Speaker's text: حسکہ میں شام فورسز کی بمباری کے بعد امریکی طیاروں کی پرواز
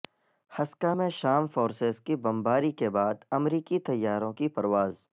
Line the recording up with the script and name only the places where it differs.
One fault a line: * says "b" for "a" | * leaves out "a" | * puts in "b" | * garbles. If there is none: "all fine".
all fine